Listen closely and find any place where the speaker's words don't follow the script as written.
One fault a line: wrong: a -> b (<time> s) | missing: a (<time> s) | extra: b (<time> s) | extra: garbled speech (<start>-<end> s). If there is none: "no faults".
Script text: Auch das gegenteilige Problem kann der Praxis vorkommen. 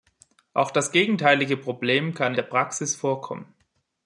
no faults